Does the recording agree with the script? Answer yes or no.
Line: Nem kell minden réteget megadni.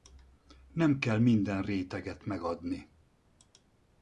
yes